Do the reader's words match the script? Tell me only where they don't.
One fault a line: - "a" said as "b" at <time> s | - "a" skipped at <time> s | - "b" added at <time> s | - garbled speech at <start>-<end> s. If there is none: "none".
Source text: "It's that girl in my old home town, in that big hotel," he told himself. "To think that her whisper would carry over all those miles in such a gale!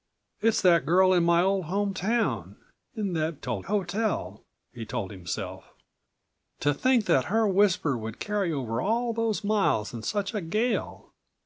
- "big" said as "told" at 3.4 s